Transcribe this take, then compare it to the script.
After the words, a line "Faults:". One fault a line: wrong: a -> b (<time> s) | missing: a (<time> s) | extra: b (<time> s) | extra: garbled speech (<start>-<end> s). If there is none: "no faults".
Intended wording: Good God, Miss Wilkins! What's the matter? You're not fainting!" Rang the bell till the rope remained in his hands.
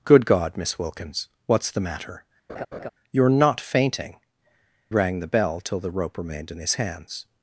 Good God, Miss Wilkins! What's the matter? You're not fainting!" Rang the bell till the rope remained in his hands.
Faults:
no faults